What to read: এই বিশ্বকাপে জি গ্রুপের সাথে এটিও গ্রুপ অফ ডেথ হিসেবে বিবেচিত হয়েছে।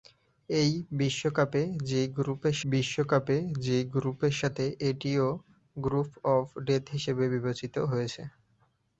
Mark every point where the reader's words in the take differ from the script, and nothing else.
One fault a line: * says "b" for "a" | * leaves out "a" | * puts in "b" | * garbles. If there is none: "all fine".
* puts in "বিশ্বকাপে জি গ্রুপের"